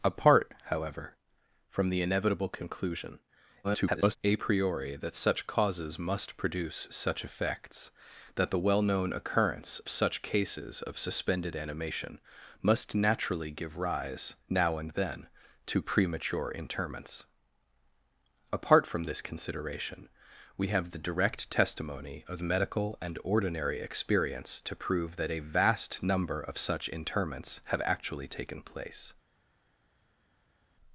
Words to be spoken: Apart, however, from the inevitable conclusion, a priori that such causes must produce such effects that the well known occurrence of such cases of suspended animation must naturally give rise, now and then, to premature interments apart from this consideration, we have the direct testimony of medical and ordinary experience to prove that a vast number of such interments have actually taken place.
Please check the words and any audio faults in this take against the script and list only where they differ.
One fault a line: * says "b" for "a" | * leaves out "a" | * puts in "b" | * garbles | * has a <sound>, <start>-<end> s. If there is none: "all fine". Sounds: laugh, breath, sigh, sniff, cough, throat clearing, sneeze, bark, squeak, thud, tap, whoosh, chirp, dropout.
* garbles
* leaves out "of"